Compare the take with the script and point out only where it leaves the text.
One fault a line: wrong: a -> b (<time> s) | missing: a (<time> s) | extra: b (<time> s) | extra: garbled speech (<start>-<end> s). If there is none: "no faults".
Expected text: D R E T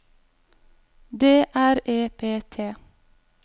extra: P (2.2 s)